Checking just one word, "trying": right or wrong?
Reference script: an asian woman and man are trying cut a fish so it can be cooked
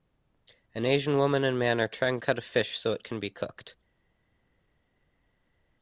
right